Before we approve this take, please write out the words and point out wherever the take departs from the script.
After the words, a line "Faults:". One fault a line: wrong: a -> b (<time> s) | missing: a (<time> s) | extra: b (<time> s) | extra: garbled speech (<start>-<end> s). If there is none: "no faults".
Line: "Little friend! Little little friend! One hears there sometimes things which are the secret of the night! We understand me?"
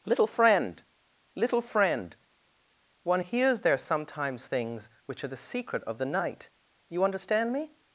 "Little friend! Little friend! One hears there sometimes things which are the secret of the night! You understand me?"
Faults:
missing: little (1.6 s)
wrong: We -> You (6.9 s)